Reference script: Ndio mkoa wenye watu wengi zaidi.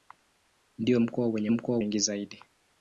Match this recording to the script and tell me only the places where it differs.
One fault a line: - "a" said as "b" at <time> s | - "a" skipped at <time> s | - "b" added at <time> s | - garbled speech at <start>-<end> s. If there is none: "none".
- "watu" said as "mkoa" at 1.5 s